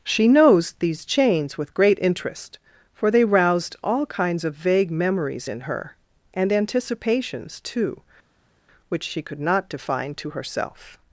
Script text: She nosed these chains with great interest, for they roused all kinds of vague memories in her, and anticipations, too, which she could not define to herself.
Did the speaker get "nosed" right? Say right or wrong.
wrong